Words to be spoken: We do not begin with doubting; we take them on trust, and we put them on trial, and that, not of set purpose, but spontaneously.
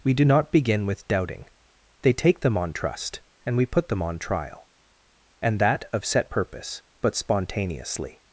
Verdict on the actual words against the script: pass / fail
fail